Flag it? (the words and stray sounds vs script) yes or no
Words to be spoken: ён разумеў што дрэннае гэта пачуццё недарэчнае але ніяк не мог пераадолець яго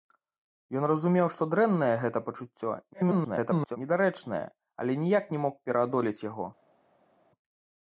yes